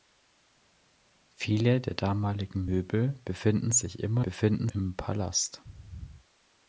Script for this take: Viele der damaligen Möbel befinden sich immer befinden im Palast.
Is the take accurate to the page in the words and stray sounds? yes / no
yes